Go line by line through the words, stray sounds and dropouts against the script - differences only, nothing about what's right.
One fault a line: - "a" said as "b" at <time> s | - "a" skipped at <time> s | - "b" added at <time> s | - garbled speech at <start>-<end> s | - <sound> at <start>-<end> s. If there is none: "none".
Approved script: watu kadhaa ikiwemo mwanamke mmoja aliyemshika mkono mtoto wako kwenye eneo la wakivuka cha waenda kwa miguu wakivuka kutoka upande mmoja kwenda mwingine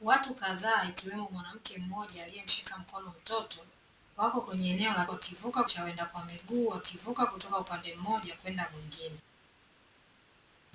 none